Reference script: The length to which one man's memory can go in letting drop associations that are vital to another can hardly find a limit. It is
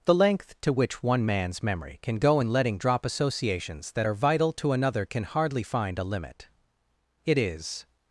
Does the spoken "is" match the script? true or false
true